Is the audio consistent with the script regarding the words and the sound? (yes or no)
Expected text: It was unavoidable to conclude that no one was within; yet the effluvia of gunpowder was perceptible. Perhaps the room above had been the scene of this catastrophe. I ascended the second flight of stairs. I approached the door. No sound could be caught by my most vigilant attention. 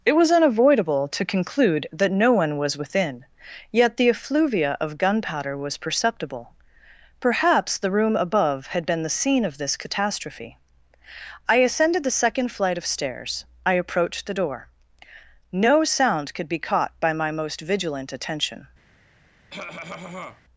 no